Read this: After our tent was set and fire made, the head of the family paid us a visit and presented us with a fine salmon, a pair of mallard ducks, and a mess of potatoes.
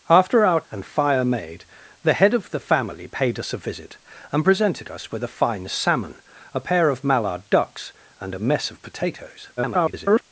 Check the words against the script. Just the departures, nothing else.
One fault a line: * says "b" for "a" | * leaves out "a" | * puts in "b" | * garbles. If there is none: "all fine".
* leaves out "tent was set"
* garbles